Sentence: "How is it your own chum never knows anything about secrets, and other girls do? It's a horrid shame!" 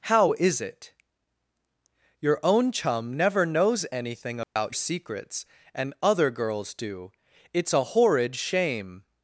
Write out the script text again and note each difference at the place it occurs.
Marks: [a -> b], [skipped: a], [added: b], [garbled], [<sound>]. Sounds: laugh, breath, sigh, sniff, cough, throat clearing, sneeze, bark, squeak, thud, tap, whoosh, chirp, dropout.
"How is it your own chum never knows anything about [dropout] secrets, and other girls do? It's a horrid shame!"